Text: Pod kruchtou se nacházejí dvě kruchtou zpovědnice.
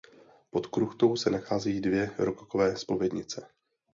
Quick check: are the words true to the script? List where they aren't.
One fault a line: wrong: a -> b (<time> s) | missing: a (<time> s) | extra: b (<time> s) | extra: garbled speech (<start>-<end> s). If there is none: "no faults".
wrong: kruchtou -> rokokové (2.2 s)